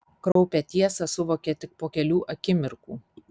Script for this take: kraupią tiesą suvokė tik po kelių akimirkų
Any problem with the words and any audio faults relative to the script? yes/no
yes